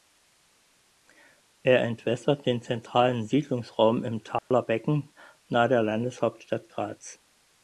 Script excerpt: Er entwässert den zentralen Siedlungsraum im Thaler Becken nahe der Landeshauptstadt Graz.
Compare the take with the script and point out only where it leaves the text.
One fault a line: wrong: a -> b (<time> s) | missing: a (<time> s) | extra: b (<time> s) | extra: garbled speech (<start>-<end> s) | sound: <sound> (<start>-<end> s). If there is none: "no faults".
sound: dropout (4.4-4.5 s)